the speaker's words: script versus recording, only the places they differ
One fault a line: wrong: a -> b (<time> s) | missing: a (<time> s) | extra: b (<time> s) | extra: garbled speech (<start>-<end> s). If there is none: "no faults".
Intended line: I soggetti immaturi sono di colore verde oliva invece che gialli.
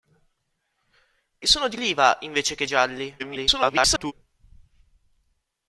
missing: soggetti immaturi (1.5 s)
missing: colore verde (1.8 s)
extra: garbled speech (3.2-4.1 s)